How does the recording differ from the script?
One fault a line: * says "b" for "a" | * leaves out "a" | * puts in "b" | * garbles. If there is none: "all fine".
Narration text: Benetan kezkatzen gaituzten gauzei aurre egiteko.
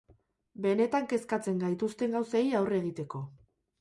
all fine